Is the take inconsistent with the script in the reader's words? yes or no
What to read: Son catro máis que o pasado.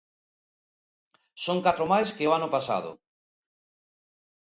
yes